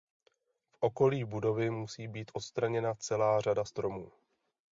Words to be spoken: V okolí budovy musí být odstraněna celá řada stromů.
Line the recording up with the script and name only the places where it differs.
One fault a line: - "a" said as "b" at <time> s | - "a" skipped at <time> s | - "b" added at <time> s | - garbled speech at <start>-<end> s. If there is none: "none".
none